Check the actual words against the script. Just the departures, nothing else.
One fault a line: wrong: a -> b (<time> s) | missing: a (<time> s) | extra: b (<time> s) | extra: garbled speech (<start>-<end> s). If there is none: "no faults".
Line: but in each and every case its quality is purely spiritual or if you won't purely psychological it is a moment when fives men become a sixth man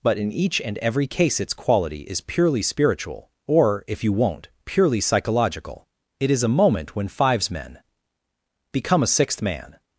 no faults